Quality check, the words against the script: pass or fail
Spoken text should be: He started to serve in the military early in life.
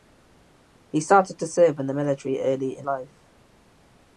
pass